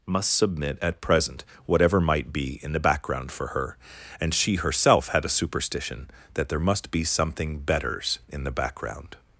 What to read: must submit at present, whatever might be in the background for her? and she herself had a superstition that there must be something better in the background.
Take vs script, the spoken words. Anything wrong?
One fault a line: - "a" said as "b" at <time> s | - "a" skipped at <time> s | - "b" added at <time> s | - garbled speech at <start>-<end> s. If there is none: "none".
- "better" said as "betters" at 7.6 s